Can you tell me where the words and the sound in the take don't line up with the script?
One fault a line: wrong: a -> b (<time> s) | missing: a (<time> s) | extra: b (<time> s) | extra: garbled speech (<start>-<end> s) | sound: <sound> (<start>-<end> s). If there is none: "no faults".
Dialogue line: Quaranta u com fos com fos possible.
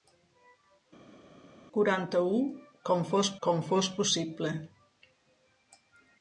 no faults